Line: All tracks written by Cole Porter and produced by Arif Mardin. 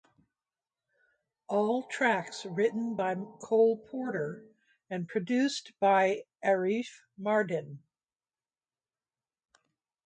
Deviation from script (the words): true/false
false